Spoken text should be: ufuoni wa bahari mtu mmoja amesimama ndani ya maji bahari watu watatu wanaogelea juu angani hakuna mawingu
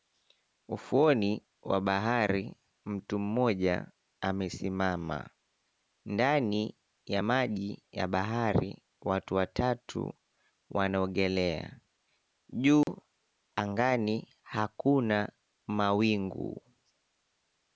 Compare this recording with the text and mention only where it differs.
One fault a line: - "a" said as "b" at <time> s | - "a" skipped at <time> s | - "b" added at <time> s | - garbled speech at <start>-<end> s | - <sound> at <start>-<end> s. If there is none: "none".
- "ya" added at 7.9 s
- dropout at 12.8-12.9 s